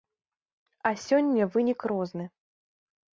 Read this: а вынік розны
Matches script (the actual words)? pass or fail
fail